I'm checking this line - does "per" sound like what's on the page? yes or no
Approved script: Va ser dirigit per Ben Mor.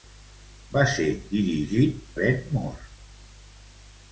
no